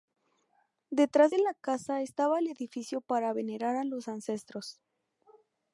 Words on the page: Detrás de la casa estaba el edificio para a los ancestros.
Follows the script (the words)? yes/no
no